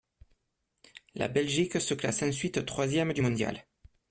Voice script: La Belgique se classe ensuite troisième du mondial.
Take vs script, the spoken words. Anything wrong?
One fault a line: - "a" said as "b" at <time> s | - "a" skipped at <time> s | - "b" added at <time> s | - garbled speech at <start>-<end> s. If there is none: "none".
none